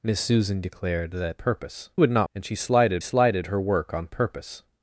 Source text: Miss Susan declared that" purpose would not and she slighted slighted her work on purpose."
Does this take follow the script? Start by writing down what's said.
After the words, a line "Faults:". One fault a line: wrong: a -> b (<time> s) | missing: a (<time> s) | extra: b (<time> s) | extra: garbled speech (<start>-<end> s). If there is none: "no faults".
Miss Susan declared that" purpose would not and she slighted slighted her work on purpose."
Faults:
no faults